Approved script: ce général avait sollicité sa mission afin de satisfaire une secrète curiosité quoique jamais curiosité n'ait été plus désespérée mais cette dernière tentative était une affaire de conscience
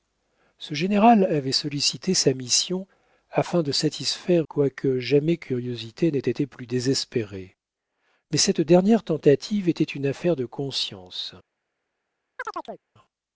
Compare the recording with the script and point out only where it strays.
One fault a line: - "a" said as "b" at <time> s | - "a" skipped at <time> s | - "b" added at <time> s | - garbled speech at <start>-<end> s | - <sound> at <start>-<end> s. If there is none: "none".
- "une secrète curiosité" skipped at 4.5 s
- chirp at 12.4-12.8 s